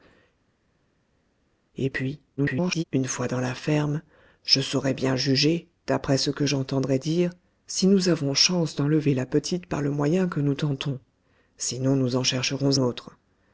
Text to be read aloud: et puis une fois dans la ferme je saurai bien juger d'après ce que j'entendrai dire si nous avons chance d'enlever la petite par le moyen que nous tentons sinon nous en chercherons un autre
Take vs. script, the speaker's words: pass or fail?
fail